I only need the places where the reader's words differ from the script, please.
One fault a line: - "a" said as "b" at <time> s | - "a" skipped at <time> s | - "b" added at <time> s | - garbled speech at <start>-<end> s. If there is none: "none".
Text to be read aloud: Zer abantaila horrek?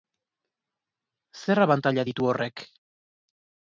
- "ditu" added at 2.1 s